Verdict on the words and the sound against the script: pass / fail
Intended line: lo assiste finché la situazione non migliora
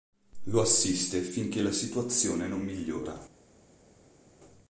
pass